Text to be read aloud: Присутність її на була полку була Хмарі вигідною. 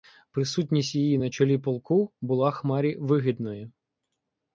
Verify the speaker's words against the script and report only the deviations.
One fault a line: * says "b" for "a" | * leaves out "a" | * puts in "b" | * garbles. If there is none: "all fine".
* says "чолі" for "була"